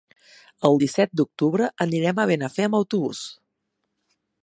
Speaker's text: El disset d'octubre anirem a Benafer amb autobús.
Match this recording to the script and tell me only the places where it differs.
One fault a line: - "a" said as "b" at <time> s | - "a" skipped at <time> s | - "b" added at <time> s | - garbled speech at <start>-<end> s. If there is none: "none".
none